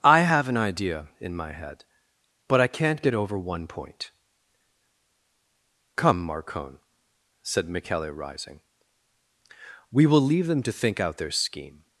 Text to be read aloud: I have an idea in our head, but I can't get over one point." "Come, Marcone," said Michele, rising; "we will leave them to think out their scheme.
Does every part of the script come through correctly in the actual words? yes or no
no